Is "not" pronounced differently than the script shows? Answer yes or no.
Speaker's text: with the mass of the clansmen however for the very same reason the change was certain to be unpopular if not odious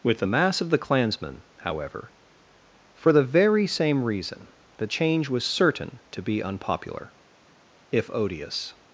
yes